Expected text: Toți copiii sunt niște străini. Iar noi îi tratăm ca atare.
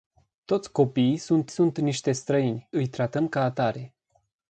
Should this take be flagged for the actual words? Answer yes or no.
yes